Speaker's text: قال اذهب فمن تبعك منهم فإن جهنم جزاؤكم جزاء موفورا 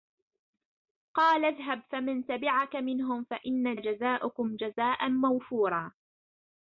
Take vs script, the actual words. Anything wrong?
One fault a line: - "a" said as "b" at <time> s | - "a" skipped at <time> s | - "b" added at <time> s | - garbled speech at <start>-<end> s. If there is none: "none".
- "جهنم" skipped at 3.8 s